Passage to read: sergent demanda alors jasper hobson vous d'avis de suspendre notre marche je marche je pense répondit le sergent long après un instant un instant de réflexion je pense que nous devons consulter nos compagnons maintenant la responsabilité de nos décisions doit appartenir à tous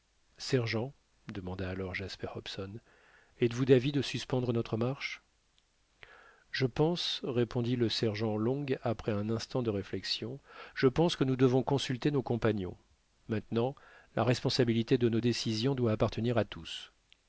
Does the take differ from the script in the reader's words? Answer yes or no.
yes